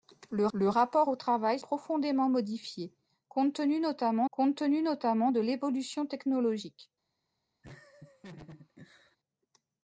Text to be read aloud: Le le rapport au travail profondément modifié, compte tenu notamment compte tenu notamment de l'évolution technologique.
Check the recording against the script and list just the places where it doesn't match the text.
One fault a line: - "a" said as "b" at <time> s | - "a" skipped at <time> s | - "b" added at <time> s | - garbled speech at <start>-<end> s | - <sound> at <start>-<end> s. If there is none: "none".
- laugh at 7.6-9.2 s